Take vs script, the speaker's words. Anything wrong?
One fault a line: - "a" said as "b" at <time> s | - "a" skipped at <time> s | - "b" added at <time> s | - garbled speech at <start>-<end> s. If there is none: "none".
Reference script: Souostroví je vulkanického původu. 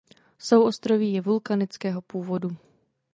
none